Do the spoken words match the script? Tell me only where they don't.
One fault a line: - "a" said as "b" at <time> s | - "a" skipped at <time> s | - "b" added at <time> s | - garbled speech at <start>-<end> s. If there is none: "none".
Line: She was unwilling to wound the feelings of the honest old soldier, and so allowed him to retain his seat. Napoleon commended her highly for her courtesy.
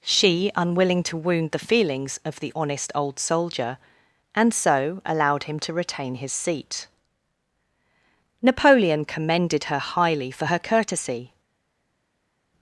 - "was" skipped at 0.5 s